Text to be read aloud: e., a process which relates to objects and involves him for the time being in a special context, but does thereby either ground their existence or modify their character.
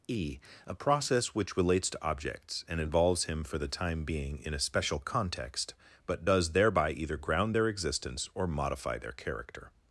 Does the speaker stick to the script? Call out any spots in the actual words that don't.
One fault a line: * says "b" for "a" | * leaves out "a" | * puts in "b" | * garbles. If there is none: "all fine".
all fine